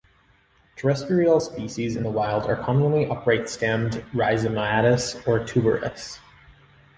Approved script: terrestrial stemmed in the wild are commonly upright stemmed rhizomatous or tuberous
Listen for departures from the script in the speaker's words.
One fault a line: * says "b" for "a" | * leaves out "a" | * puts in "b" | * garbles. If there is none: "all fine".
* says "species" for "stemmed"